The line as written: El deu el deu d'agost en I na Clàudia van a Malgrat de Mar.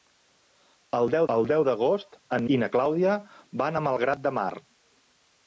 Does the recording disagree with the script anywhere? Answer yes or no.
no